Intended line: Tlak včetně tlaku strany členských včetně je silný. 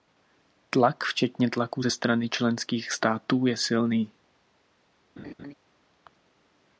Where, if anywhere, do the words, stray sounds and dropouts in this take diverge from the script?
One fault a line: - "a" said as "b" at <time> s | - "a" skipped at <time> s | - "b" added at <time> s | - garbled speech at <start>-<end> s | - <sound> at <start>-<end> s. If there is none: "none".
- "ze" added at 1.8 s
- "včetně" said as "států" at 2.9 s
- laugh at 5.2-5.5 s